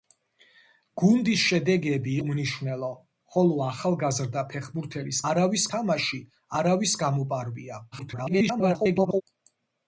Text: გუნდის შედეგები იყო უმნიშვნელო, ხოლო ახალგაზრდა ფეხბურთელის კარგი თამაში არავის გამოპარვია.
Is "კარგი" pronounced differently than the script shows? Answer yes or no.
yes